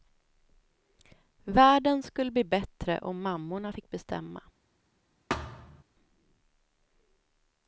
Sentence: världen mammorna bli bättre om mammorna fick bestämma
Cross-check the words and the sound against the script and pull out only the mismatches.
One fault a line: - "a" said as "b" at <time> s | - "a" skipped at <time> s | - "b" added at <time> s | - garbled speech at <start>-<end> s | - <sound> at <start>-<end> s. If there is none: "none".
- "mammorna" said as "skulle" at 2.0 s
- thud at 5.3-5.8 s